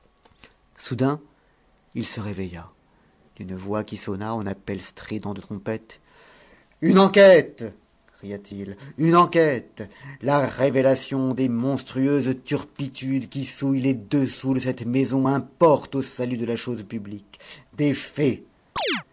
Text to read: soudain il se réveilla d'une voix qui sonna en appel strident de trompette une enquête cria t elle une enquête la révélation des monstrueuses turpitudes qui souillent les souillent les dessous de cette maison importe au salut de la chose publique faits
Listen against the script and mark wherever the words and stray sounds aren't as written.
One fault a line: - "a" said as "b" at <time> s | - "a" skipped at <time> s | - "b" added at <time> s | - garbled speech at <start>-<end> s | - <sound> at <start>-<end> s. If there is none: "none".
- "elle" said as "il" at 8.5 s
- "souillent les" skipped at 13.9 s
- "des" added at 17.7 s
- chirp at 18.8-19.0 s